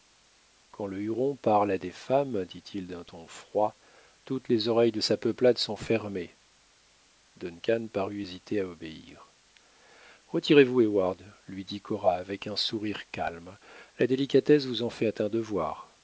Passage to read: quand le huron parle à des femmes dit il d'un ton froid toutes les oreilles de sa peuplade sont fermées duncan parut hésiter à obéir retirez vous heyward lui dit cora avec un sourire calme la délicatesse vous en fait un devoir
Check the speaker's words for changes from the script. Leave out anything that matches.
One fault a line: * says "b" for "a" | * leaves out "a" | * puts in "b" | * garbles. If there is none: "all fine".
all fine